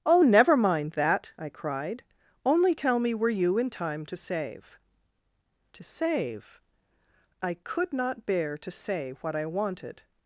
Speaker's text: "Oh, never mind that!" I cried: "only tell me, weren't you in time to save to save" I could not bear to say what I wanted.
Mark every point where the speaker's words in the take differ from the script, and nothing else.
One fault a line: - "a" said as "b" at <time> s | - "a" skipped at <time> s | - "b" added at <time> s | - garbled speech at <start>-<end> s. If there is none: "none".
- "weren't" said as "were" at 3.1 s